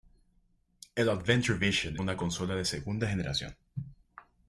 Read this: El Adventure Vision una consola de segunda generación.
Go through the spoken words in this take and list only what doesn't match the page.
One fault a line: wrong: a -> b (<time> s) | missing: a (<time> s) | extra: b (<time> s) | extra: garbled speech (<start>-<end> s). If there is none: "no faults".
no faults